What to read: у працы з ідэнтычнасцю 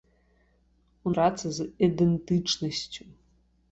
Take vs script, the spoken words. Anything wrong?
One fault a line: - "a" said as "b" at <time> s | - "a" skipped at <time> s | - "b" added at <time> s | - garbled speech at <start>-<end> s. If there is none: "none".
none